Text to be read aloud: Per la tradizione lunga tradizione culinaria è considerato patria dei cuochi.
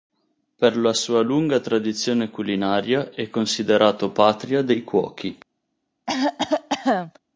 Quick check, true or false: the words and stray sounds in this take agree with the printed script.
false